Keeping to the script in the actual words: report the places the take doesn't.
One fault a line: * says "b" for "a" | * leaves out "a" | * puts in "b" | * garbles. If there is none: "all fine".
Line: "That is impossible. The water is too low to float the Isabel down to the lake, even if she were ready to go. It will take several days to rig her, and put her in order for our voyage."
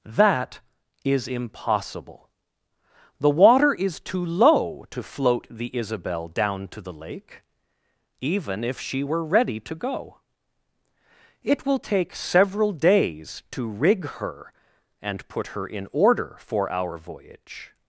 all fine